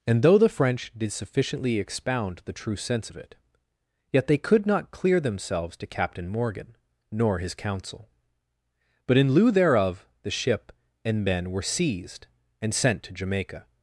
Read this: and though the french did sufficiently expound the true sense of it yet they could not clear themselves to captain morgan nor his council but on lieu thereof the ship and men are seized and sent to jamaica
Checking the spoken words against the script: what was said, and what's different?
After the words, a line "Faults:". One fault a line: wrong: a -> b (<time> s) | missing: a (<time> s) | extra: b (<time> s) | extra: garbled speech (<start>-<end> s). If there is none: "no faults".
and though the french did sufficiently expound the true sense of it yet they could not clear themselves to captain morgan nor his council but in lieu thereof the ship and men were seized and sent to jamaica
Faults:
wrong: on -> in (9.2 s)
wrong: are -> were (11.5 s)